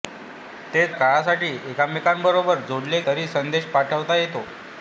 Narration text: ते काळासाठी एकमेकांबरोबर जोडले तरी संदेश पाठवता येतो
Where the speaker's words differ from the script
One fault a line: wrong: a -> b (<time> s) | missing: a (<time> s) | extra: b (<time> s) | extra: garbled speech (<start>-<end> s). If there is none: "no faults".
no faults